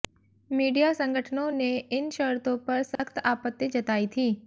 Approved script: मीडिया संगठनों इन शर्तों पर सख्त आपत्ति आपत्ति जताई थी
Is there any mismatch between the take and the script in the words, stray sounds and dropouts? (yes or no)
yes